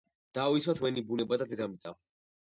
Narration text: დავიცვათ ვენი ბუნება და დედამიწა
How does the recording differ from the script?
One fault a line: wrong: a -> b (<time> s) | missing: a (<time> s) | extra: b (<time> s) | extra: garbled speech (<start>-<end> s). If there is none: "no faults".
no faults